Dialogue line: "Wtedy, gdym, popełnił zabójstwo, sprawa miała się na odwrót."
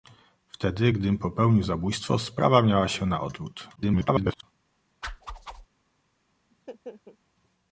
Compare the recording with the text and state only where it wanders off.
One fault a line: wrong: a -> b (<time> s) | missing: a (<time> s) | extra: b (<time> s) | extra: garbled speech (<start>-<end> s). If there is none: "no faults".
extra: garbled speech (3.8-4.4 s)